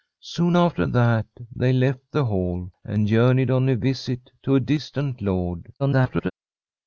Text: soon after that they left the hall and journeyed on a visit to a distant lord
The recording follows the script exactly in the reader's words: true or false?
false